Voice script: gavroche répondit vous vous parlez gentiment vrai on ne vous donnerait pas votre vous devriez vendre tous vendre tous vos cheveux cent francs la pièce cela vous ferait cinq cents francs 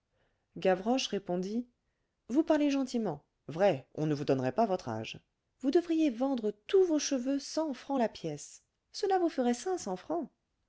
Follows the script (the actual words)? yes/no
no